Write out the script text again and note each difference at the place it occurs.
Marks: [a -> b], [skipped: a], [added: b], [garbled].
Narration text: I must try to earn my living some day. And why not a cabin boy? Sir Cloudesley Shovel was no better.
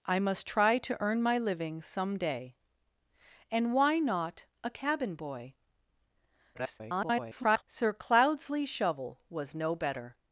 I must try to earn my living some day. And why not a cabin boy? [garbled] Sir Cloudesley Shovel was no better.